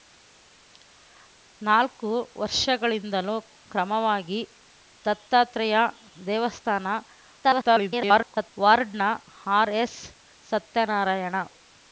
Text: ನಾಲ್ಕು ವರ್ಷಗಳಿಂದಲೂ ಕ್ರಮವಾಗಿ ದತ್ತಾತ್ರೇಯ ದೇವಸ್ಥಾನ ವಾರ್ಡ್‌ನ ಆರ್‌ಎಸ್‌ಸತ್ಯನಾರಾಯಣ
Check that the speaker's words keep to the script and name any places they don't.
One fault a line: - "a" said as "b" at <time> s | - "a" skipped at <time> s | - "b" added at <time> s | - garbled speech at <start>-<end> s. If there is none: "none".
- garbled speech at 7.4-8.5 s